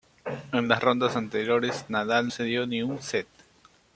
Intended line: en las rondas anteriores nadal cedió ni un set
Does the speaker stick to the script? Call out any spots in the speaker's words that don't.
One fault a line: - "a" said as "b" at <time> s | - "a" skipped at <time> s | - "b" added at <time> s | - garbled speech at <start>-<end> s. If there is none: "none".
none